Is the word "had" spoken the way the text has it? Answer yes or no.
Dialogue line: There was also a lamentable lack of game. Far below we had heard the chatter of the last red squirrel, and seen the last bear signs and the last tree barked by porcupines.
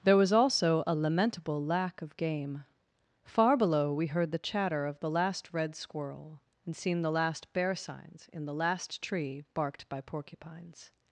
no